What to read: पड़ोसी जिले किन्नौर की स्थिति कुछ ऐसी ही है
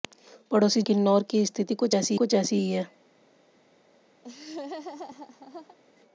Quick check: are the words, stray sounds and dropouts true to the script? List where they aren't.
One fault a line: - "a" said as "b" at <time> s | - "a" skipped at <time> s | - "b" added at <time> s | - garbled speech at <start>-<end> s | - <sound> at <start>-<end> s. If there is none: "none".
- "जिले" skipped at 0.8 s
- "कुछ ऐसी" added at 2.1 s
- laugh at 4.2-5.8 s